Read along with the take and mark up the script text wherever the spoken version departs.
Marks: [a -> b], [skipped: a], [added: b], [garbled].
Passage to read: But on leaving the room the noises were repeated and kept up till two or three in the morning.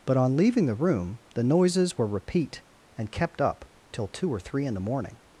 But on leaving the room the noises were [repeated -> repeat] and kept up till two or three in the morning.